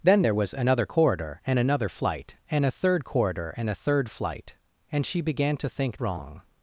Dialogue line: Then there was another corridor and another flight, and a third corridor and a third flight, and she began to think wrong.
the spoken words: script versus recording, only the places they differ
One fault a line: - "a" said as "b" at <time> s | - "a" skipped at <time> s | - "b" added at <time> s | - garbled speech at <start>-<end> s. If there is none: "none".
none